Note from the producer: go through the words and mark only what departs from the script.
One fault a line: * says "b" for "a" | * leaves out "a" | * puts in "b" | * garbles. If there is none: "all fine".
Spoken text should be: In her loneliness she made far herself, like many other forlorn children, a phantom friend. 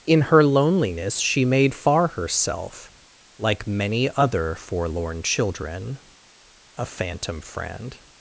all fine